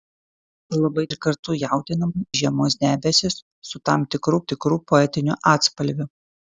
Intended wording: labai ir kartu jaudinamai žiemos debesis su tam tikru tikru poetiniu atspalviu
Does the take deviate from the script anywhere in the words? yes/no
no